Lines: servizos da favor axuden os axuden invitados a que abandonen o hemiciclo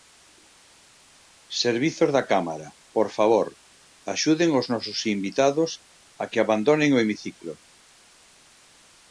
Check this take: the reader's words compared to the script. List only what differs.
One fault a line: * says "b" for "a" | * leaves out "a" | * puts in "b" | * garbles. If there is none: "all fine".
* puts in "cámara por"
* says "nosos" for "axuden"